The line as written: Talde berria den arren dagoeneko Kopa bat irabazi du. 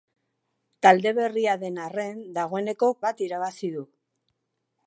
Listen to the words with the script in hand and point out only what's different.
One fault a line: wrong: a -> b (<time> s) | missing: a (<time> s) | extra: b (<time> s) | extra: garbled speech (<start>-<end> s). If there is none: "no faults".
missing: Kopa (2.9 s)